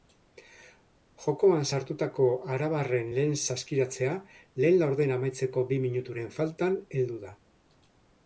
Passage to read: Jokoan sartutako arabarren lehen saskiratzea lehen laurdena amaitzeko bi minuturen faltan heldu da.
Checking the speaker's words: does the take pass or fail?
pass